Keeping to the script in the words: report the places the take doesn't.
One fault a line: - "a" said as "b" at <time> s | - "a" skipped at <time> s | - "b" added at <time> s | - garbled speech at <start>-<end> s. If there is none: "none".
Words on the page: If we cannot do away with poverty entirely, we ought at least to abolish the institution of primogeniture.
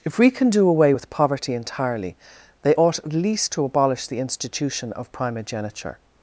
- "cannot" said as "can" at 0.3 s
- "we" said as "they" at 2.6 s